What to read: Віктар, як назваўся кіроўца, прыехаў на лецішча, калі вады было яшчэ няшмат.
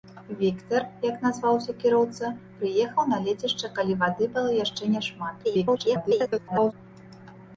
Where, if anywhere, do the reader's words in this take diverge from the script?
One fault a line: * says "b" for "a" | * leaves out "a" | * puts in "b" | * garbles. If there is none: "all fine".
* garbles